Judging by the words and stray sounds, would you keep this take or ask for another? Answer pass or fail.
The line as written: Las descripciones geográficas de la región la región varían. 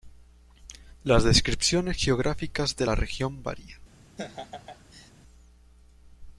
fail